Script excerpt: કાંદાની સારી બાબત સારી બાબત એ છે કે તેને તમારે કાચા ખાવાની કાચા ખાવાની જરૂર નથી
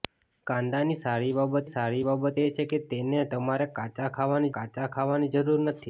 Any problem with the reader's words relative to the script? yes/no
no